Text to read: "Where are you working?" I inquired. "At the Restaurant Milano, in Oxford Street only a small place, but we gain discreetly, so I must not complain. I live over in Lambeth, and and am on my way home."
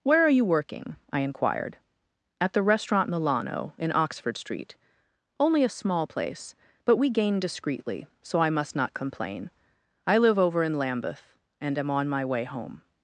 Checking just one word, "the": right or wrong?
right